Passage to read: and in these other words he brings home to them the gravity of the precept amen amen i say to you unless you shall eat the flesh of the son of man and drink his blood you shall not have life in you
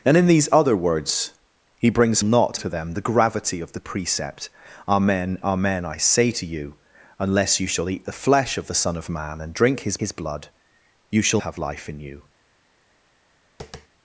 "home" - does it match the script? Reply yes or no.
no